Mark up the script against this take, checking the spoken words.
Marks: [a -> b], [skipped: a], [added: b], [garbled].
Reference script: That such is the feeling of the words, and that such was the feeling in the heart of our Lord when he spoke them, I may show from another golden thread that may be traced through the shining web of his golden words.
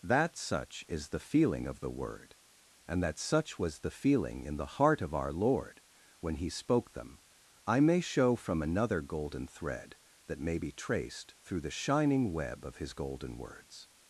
That such is the feeling of the [words, -> word] and that such was the feeling in the heart of our Lord when he spoke them, I may show from another golden thread that may be traced through the shining web of his golden words.